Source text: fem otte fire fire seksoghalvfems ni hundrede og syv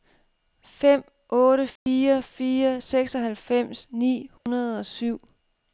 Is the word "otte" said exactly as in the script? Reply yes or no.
yes